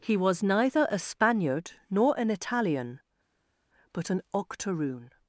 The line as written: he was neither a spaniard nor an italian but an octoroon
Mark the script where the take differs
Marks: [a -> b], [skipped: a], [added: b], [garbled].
he was neither a spaniard nor an italian but an octoroon